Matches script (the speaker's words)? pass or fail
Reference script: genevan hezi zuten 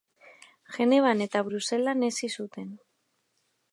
fail